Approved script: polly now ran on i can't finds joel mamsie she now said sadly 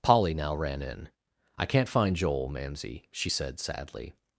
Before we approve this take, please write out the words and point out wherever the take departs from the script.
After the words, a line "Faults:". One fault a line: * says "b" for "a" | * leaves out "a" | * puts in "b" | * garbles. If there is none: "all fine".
polly now ran in i can't find joel mamsie she said sadly
Faults:
* says "in" for "on"
* says "find" for "finds"
* leaves out "now"